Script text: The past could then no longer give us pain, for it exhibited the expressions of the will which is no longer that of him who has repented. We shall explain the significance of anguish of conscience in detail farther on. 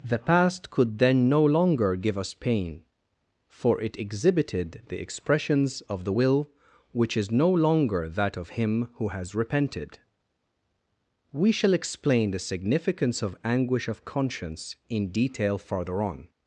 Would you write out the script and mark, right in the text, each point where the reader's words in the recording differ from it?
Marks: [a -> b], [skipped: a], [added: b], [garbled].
The past could then no longer give us pain, for it exhibited the expressions of the will which is no longer that of him who has repented. We shall explain the significance of anguish of conscience in detail farther on.